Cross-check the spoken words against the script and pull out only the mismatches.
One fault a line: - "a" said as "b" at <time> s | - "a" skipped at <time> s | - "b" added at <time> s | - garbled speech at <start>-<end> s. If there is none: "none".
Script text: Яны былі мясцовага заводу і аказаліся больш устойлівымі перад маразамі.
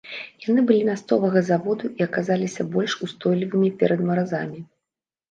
none